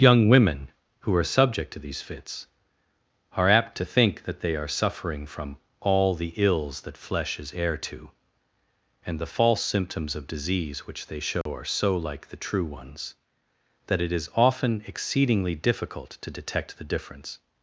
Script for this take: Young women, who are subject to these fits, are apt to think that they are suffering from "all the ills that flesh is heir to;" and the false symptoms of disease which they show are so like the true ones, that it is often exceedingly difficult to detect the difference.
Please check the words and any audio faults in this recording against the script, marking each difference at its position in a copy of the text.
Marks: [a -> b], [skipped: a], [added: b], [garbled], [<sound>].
Young women, who are subject to these fits, are apt to think that they are suffering from "all the ills that flesh is heir to;" and the false symptoms of disease which they show [dropout] are so like the true ones, that it is often exceedingly difficult to detect the difference.